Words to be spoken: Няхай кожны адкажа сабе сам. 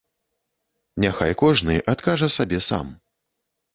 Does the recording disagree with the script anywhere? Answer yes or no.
no